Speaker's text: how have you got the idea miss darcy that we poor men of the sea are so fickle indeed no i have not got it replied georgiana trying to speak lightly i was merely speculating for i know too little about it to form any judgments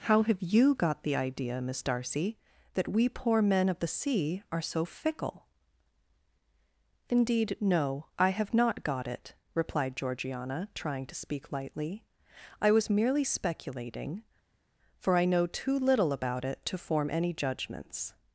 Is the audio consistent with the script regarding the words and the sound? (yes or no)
yes